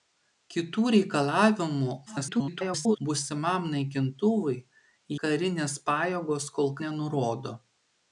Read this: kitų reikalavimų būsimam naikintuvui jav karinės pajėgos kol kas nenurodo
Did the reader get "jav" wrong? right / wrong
wrong